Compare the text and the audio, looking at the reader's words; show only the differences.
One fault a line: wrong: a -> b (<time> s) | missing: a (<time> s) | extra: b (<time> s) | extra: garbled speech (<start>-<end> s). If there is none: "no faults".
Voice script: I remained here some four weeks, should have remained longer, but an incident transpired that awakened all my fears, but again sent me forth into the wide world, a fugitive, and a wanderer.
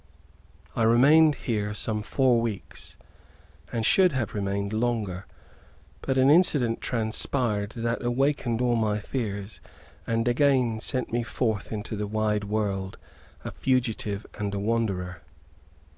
extra: and (3.7 s)
wrong: but -> and (10.1 s)